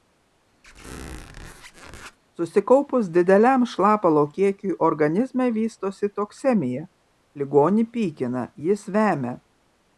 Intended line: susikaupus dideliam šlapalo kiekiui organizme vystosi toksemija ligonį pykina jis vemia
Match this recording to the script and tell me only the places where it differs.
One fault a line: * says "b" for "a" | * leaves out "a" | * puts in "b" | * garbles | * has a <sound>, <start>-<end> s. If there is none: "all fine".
* has a squeak, 0.6-2.2 s